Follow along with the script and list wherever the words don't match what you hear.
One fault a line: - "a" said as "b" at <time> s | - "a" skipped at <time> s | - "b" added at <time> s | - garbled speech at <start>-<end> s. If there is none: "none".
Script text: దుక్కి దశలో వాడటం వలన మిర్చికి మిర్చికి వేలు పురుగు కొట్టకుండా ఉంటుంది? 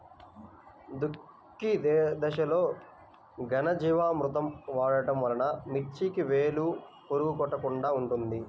- "ఘనజీవామృతం" added at 3.5 s
- "మిర్చికి" skipped at 6.2 s